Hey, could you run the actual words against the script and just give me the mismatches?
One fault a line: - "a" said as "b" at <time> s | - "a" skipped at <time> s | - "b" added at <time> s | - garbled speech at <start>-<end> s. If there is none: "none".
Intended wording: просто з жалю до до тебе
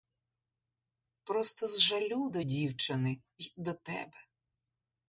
- "дівчини й" added at 2.4 s